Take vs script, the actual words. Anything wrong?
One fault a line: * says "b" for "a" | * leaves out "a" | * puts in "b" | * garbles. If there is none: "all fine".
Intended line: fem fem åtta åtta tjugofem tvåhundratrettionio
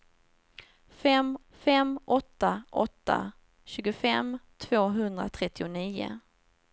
all fine